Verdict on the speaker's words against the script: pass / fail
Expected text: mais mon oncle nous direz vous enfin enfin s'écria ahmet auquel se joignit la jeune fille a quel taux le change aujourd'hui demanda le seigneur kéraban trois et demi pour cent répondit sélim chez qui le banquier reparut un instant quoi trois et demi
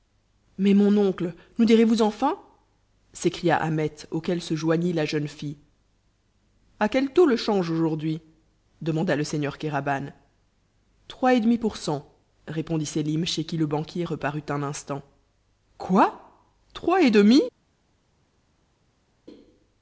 fail